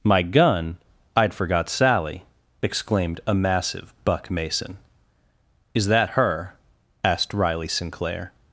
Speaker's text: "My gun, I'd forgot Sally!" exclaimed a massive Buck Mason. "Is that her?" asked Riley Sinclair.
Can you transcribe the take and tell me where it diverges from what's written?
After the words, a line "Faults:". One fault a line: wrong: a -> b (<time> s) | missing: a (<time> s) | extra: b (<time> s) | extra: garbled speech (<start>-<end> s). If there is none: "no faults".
"My gun, I'd forgot Sally!" exclaimed a massive Buck Mason. "Is that her?" asked Riley Sinclair.
Faults:
no faults